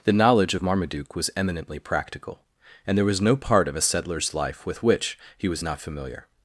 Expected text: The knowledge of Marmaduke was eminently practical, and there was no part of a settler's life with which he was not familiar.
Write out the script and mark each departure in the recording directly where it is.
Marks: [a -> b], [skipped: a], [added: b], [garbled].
The knowledge of Marmaduke was eminently practical, and there was no part of a settler's life with which he was not familiar.